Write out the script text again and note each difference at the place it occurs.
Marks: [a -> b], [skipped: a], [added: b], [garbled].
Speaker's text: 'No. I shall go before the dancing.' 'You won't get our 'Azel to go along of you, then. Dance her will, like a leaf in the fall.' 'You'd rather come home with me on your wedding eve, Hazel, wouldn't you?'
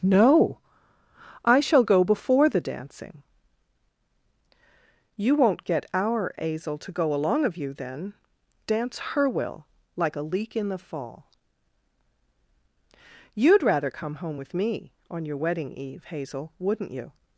'No. I shall go before the dancing.' 'You won't get our 'Azel to go along of you, then. Dance her will, like a [leaf -> leak] in the fall.' 'You'd rather come home with me on your wedding eve, Hazel, wouldn't you?'